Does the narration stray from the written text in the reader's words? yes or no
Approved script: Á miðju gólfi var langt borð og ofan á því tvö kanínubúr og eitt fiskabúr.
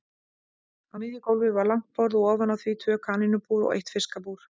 no